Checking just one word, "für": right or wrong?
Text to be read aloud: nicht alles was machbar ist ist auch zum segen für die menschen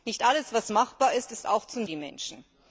wrong